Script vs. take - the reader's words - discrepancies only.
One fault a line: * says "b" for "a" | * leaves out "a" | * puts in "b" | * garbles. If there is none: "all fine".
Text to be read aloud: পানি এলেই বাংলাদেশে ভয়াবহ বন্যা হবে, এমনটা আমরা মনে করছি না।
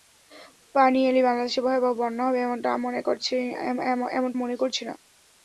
* leaves out "আমরা"